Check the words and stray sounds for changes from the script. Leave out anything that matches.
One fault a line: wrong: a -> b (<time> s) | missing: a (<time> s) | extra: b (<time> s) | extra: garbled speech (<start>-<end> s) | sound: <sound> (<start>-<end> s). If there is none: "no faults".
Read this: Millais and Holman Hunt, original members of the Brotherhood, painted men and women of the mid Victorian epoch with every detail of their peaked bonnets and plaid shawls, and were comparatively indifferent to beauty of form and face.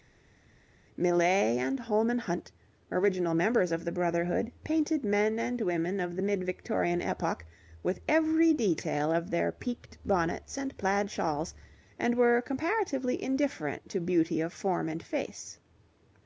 no faults